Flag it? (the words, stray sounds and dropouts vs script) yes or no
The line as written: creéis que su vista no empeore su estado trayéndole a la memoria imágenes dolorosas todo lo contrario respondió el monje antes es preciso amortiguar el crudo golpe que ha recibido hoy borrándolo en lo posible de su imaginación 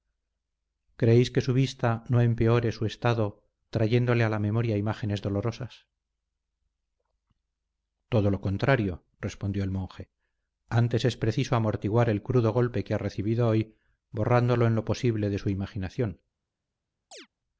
yes